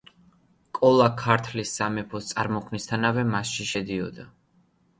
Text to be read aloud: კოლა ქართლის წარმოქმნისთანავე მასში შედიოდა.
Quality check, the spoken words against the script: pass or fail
fail